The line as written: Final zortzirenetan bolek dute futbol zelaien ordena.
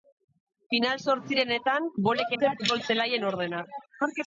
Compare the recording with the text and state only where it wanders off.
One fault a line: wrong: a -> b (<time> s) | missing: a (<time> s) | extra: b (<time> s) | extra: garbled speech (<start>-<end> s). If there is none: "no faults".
no faults